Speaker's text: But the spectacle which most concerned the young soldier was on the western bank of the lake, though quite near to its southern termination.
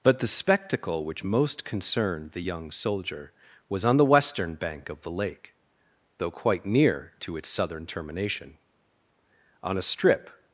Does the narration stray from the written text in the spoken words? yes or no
yes